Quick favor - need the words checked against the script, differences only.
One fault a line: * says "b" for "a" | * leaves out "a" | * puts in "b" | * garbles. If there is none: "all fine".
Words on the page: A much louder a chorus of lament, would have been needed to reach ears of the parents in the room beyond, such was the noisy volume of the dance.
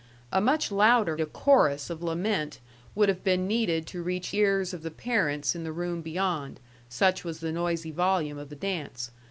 all fine